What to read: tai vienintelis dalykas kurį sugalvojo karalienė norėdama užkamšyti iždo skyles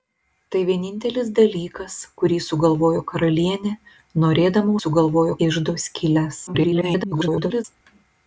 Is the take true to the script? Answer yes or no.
no